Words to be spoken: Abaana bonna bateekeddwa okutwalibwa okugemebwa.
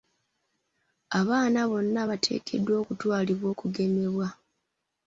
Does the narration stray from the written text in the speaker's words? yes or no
no